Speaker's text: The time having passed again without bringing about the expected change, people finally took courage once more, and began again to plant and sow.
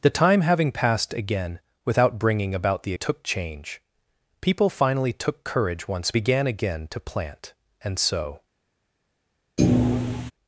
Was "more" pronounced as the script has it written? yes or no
no